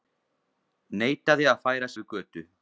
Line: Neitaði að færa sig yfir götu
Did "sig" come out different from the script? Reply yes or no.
yes